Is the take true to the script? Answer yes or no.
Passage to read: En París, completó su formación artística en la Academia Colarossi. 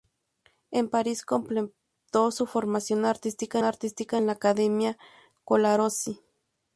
no